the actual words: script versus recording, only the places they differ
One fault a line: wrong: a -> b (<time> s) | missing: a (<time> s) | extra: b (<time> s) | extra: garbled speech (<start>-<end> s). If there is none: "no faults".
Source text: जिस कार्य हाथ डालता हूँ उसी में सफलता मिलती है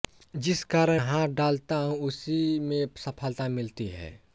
no faults